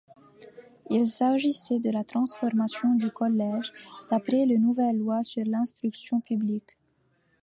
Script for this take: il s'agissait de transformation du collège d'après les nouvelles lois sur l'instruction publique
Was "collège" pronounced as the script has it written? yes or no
yes